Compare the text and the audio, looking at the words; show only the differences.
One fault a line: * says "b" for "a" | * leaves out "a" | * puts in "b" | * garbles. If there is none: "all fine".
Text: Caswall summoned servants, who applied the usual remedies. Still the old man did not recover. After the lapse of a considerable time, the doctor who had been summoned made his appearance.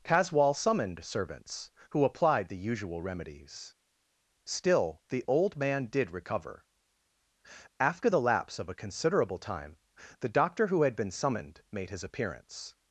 * leaves out "not"